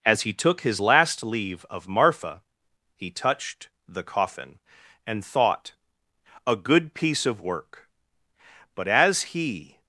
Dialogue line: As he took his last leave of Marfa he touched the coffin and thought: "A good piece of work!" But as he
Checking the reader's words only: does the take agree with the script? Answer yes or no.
yes